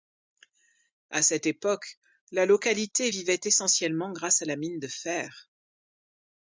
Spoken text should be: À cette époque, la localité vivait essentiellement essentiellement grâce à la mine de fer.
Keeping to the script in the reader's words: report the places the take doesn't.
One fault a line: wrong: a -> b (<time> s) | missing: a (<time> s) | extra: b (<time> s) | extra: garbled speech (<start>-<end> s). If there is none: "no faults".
missing: essentiellement (4.1 s)